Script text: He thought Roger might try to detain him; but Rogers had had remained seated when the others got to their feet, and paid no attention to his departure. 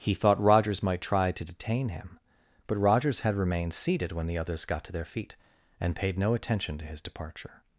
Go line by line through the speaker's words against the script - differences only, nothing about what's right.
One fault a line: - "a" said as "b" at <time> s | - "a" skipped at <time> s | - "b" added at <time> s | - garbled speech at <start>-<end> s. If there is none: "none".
- "Roger" said as "Rogers" at 0.4 s
- "had" skipped at 3.4 s